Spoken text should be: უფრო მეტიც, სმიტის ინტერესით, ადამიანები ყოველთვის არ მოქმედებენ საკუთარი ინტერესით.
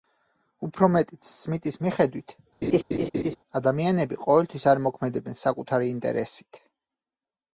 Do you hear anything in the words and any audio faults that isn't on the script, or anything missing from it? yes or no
yes